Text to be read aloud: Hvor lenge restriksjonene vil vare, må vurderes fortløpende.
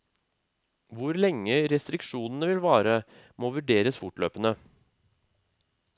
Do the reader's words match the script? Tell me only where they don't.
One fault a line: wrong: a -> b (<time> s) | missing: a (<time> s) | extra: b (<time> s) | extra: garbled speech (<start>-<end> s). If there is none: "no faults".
no faults